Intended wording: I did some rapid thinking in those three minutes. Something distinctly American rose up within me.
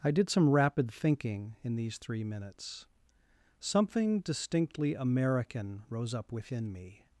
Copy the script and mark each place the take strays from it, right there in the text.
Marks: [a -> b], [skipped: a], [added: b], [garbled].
I did some rapid thinking in [those -> these] three minutes. Something distinctly American rose up within me.